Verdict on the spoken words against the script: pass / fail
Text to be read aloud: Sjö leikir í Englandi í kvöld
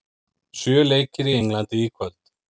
pass